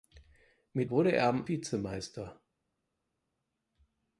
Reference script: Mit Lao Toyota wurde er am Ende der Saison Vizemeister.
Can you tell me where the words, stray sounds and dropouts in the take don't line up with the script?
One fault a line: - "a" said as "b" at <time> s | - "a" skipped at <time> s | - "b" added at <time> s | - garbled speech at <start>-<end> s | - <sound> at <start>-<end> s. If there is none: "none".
- "Lao Toyota" skipped at 0.9 s
- "Ende der Saison" skipped at 1.5 s